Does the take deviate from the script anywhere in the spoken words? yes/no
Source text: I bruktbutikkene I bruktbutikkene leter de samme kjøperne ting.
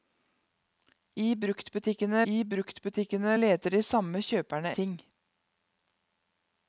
no